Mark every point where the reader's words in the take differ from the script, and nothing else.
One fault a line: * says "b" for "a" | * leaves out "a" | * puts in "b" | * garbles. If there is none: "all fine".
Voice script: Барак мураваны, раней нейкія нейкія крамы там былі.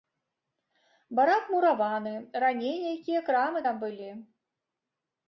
* leaves out "нейкія"